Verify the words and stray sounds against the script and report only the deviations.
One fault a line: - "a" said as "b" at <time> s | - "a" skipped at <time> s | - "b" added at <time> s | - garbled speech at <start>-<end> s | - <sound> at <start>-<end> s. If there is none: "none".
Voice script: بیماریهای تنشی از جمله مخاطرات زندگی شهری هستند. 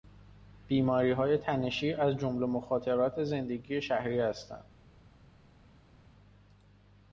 none